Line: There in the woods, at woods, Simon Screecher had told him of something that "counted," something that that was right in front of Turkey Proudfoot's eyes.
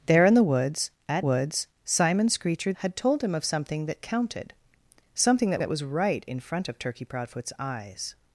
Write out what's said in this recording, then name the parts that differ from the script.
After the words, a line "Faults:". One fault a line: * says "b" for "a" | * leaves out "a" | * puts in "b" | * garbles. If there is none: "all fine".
There in the woods, at woods, Simon Screecher had told him of something that "counted," something that that was right in front of Turkey Proudfoot's eyes.
Faults:
all fine